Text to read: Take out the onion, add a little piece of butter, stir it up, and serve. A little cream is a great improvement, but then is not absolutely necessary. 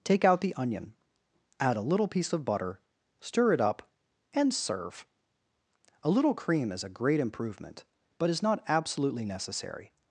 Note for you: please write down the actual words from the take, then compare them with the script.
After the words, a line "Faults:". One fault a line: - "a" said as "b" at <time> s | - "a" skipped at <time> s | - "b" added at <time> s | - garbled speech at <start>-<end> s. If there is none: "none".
Take out the onion, add a little piece of butter, stir it up, and serve. A little cream is a great improvement, but is not absolutely necessary.
Faults:
- "then" skipped at 8.3 s